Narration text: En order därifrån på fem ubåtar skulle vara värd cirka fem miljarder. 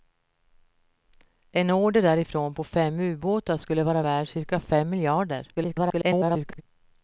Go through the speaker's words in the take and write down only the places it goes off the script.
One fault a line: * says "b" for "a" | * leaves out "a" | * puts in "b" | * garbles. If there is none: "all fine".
* garbles